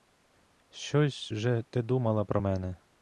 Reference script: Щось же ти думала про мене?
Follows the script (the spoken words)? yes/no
yes